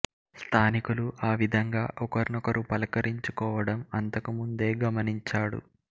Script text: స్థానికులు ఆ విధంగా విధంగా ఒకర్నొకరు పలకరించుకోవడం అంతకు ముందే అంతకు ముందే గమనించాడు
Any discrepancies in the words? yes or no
yes